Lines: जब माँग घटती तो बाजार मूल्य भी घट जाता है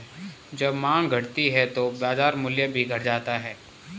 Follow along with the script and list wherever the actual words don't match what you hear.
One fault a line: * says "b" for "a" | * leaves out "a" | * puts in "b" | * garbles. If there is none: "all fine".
* puts in "है"